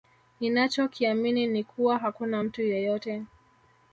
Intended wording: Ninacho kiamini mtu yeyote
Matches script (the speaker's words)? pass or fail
fail